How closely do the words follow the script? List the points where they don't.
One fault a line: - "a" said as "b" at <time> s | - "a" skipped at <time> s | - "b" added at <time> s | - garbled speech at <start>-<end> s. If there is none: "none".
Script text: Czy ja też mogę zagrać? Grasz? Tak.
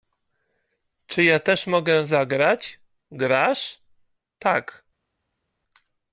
none